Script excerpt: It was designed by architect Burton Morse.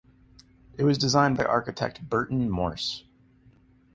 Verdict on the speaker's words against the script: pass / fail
pass